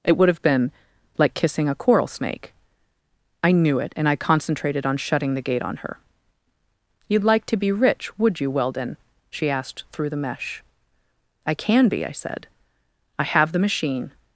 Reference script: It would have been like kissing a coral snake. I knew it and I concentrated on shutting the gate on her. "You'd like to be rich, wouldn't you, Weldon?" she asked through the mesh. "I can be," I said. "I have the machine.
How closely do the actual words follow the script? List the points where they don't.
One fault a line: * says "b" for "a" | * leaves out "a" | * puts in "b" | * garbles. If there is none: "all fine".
* says "would" for "wouldn't"